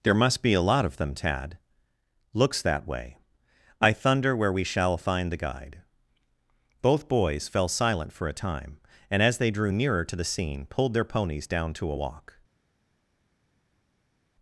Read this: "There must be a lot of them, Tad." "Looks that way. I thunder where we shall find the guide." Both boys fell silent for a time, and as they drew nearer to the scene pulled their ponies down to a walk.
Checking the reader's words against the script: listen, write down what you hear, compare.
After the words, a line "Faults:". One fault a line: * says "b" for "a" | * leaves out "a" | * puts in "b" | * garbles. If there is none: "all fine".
"There must be a lot of them, Tad." "Looks that way. I thunder where we shall find the guide." Both boys fell silent for a time, and as they drew nearer to the scene pulled their ponies down to a walk.
Faults:
all fine